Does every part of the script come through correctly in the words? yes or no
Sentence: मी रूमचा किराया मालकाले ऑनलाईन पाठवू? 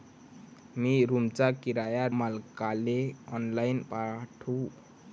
yes